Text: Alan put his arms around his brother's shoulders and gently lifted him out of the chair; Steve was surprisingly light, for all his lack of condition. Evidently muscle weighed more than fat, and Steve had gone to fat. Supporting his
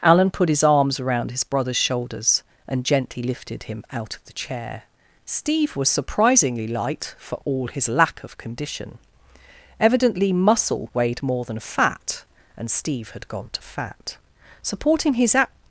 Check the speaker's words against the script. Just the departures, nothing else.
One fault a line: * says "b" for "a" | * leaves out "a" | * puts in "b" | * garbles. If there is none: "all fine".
all fine